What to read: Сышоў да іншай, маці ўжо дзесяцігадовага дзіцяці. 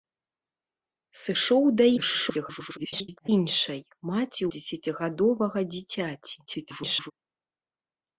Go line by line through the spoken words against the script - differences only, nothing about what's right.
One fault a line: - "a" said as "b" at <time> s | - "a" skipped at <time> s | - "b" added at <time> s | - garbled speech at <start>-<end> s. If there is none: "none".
- garbled speech at 2.0-3.3 s
- "ўжо" skipped at 4.4 s
- garbled speech at 6.5-7.1 s